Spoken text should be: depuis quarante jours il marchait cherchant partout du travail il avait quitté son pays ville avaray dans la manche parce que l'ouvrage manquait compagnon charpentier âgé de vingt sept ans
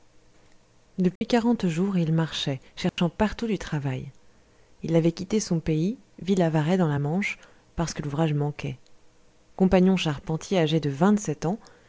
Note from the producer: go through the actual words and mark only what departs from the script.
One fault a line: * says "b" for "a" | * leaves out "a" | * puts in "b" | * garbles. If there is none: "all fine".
all fine